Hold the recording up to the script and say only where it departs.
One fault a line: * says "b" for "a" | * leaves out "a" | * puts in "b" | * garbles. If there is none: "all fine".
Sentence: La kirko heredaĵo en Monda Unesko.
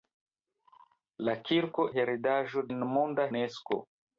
all fine